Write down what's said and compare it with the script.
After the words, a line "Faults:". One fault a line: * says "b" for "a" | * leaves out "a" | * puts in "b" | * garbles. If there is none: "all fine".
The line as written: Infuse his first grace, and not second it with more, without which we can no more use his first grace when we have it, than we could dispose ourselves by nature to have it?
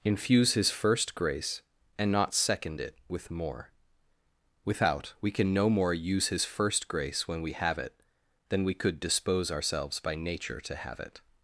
Infuse his first grace, and not second it with more, without we can no more use his first grace when we have it, than we could dispose ourselves by nature to have it?
Faults:
* leaves out "which"